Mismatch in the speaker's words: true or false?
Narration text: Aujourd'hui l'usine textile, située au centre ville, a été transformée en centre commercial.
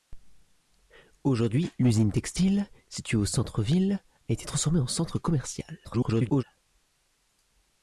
true